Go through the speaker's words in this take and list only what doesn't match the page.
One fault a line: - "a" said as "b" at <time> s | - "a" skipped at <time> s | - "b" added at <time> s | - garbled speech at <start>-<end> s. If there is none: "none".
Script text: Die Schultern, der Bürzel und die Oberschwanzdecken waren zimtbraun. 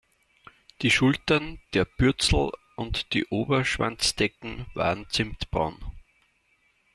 none